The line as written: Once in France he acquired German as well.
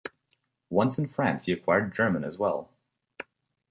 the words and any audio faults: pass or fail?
pass